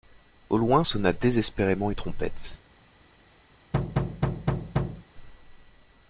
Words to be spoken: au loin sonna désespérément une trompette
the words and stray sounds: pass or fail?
fail